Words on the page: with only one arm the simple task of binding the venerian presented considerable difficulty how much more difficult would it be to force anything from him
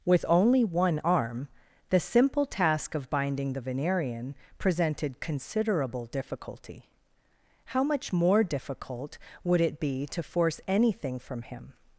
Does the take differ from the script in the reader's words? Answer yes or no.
no